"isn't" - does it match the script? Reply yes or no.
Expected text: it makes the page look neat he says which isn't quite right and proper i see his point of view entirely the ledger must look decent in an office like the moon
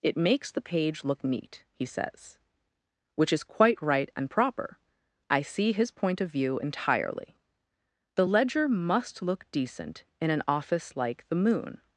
no